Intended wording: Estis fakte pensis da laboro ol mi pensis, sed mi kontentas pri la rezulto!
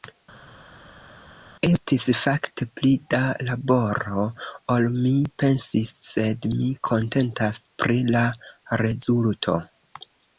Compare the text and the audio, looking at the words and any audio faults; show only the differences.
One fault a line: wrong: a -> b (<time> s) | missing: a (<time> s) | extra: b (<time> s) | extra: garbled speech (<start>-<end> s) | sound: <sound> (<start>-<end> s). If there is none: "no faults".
wrong: pensis -> pli (2.8 s)